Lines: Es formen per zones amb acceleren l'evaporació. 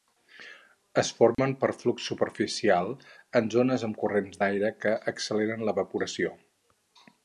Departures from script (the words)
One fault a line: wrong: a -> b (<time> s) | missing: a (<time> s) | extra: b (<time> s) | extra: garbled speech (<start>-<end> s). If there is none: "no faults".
extra: flux superficial en (1.8 s)
extra: corrents d'aire que (4.0 s)